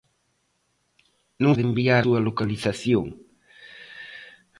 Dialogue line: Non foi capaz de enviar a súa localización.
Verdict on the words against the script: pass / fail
fail